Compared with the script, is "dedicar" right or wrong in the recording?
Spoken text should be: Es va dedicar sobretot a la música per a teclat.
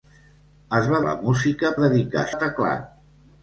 wrong